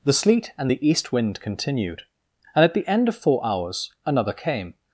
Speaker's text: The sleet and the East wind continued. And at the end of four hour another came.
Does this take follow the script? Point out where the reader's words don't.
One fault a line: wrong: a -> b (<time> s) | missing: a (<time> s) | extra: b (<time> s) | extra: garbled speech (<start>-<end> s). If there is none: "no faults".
wrong: hour -> hours (3.5 s)